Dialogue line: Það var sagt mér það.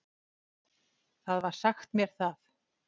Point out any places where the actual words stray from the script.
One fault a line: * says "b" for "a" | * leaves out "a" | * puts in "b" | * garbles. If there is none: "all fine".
all fine